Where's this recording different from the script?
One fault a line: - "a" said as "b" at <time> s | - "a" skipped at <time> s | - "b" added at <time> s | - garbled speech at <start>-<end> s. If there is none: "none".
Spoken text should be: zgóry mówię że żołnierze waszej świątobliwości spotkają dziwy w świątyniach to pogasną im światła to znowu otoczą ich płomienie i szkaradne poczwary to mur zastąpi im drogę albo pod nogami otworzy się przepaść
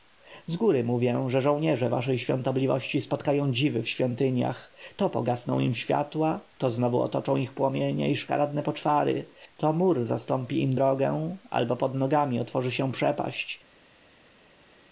none